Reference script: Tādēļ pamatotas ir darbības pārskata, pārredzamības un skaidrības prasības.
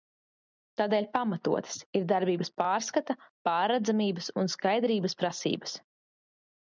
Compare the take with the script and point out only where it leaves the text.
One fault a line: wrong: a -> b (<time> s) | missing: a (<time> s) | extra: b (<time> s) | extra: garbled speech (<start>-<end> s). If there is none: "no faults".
no faults